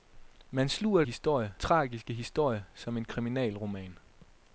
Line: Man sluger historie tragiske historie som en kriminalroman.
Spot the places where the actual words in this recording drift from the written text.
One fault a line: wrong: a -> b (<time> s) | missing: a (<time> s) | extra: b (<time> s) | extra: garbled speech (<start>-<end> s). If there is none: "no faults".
no faults